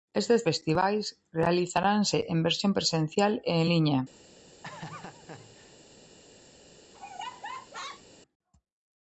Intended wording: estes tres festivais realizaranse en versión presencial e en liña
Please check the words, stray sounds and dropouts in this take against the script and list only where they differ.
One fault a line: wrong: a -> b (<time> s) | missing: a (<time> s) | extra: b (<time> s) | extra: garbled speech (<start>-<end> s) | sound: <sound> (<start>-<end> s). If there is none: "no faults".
missing: tres (0.4 s)
sound: laugh (4.6-5.8 s)
sound: laugh (6.9-8.0 s)